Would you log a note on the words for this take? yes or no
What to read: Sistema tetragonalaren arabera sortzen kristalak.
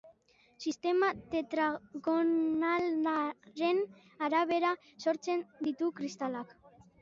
yes